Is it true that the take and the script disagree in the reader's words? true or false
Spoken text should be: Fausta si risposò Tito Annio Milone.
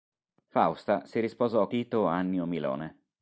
false